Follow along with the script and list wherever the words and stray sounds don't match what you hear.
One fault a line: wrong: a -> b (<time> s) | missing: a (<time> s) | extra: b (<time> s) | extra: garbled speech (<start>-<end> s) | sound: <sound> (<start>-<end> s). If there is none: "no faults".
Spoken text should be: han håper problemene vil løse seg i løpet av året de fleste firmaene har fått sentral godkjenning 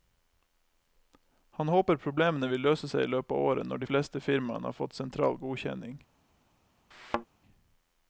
extra: når (3.7 s)
sound: thud (6.9-7.3 s)